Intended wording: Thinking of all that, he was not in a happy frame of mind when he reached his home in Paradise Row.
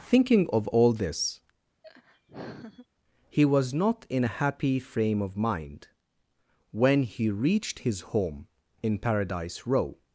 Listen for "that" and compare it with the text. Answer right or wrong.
wrong